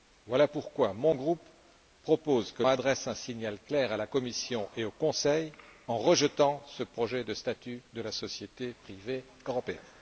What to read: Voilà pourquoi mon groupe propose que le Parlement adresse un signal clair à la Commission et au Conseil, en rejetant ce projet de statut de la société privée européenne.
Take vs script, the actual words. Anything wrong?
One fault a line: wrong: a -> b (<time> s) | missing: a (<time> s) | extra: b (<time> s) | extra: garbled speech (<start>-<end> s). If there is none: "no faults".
missing: le Parlement (2.6 s)